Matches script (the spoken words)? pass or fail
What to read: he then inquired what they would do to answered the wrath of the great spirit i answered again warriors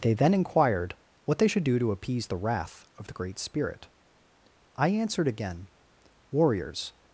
fail